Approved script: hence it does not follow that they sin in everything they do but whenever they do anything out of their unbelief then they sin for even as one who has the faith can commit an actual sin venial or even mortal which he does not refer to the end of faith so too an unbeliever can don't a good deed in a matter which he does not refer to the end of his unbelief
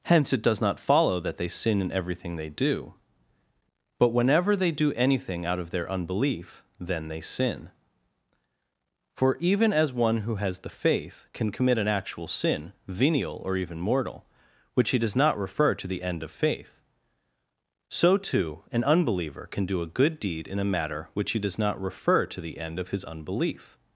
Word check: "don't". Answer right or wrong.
wrong